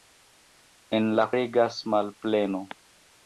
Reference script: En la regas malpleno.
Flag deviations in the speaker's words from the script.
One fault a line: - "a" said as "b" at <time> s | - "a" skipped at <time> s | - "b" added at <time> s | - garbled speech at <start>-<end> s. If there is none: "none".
none